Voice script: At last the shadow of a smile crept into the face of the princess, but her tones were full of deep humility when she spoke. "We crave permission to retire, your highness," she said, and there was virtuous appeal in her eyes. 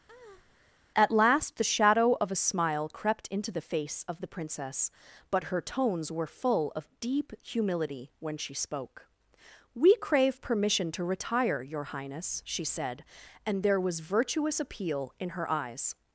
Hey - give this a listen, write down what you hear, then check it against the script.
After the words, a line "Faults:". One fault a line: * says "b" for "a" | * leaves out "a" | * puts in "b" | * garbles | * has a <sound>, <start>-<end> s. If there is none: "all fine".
At last the shadow of a smile crept into the face of the princess, but her tones were full of deep humility when she spoke. "We crave permission to retire, your highness," she said, and there was virtuous appeal in her eyes.
Faults:
* has a breath, 0.1-0.8 s